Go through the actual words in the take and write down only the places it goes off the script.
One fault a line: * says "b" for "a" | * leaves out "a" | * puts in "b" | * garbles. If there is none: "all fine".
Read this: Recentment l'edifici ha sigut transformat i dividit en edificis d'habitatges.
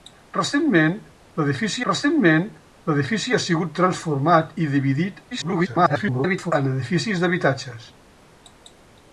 * puts in "recentment l'edifici"
* garbles